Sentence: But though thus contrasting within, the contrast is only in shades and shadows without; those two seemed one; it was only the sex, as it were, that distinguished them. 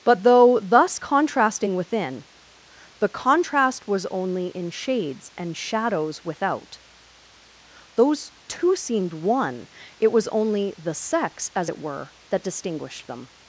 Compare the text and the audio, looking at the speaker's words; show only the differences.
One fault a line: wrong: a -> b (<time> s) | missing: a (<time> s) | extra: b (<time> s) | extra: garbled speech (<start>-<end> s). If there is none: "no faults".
wrong: is -> was (3.9 s)